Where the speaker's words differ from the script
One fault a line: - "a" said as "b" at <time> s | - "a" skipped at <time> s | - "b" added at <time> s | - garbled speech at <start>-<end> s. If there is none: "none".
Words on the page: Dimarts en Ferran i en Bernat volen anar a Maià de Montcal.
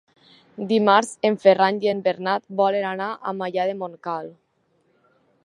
none